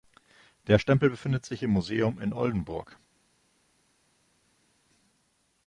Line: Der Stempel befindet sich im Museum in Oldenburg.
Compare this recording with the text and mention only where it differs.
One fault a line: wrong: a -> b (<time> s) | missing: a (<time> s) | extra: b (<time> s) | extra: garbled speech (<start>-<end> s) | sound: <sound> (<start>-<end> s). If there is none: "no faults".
no faults